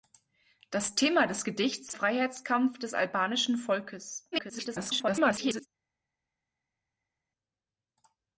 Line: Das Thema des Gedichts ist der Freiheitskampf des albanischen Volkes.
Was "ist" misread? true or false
true